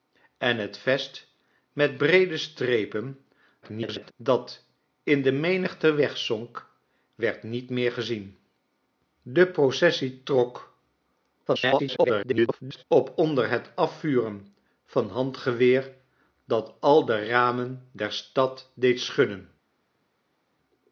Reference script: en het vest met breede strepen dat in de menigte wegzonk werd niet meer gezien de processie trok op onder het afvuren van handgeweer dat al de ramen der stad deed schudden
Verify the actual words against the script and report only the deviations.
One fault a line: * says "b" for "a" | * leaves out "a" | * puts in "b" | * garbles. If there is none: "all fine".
* garbles
* garbles